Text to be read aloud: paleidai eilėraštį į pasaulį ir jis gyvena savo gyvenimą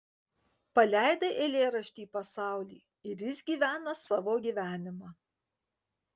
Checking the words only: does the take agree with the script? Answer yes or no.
yes